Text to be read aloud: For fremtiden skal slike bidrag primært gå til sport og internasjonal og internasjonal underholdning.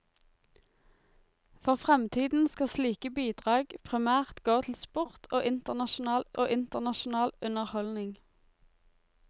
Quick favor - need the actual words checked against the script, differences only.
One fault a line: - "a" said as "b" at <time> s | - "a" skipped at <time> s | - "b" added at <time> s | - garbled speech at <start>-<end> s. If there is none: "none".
none